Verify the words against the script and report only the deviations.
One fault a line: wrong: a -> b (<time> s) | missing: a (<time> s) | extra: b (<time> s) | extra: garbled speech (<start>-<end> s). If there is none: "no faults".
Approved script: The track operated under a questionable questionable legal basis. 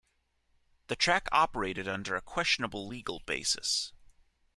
missing: questionable (2.9 s)